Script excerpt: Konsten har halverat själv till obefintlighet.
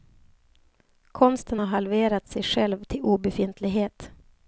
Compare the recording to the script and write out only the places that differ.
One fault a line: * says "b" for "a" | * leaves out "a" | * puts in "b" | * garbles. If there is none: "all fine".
* puts in "sig"